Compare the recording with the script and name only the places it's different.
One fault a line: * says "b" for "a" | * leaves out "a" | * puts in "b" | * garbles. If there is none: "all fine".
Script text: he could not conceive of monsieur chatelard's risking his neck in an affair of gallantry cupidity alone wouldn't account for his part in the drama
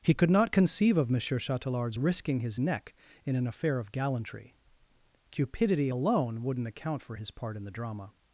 all fine